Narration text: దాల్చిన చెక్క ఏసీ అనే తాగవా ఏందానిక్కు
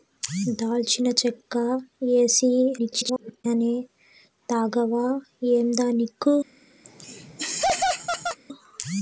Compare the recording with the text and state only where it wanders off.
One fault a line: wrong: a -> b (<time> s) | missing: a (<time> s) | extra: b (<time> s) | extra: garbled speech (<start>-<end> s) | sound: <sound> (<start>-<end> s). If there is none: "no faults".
extra: garbled speech (2.8-3.4 s)
sound: laugh (6.8-8.4 s)